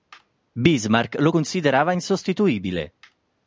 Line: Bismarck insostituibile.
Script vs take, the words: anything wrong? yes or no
yes